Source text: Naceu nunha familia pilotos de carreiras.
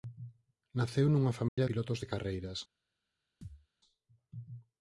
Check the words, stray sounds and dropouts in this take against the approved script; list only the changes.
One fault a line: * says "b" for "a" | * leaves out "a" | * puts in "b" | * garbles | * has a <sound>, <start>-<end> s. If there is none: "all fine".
* has a dropout, 1.5-1.6 s
* has a thud, 3.4-3.7 s